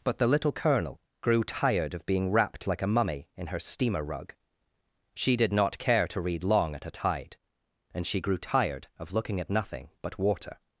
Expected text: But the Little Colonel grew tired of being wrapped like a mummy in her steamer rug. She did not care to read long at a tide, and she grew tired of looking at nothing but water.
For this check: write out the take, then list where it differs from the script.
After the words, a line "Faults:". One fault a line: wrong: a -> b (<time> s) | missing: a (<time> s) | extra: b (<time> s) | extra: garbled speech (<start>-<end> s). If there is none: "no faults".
But the Little Colonel grew tired of being wrapped like a mummy in her steamer rug. She did not care to read long at a tide, and she grew tired of looking at nothing but water.
Faults:
no faults